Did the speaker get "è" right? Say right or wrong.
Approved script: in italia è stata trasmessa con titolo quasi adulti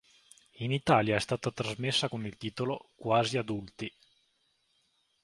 right